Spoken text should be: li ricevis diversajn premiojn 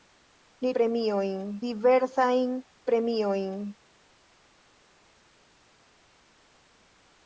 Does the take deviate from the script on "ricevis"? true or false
true